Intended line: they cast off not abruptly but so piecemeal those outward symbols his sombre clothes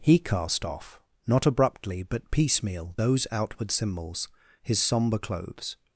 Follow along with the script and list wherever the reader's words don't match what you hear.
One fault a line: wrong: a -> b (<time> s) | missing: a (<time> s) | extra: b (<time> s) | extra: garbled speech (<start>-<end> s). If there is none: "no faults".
wrong: they -> he (0.0 s)
missing: so (2.3 s)